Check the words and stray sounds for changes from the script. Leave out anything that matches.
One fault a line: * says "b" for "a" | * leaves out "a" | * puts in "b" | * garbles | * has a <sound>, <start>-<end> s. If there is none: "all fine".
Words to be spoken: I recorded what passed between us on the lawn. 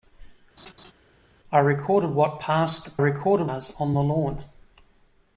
* has a laugh, 0.6-0.9 s
* says "recorded" for "between"